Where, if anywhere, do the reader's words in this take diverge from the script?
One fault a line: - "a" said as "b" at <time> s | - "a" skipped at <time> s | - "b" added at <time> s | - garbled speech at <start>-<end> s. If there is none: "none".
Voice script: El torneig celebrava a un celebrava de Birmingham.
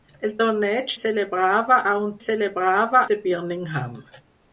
none